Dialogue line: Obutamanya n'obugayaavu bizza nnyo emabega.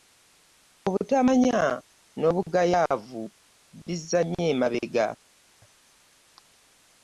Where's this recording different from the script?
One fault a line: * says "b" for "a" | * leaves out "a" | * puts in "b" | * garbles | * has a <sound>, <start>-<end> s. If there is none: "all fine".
all fine